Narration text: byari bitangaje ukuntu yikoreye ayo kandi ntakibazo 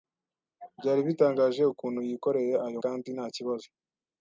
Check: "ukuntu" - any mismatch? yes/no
no